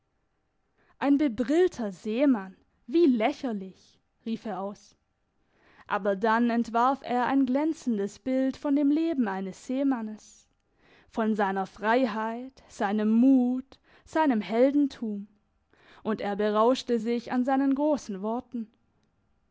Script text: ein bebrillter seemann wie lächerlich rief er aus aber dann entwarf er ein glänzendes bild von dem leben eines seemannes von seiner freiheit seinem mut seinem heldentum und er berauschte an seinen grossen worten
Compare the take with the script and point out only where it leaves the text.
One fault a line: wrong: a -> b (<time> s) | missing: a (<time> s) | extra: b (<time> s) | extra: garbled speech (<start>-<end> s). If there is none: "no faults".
extra: sich (16.9 s)